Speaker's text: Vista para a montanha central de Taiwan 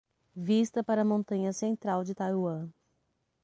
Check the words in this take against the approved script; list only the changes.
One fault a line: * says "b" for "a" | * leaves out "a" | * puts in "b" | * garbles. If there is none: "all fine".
all fine